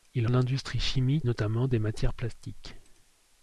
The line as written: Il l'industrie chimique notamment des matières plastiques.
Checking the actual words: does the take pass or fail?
pass